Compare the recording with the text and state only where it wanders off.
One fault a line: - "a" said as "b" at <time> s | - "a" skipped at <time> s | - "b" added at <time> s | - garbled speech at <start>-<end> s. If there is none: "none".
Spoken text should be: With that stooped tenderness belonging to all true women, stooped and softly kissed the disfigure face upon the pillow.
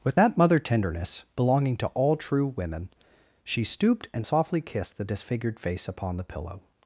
- "stooped" said as "mother" at 0.4 s
- "she" added at 3.4 s
- "disfigure" said as "disfigured" at 5.0 s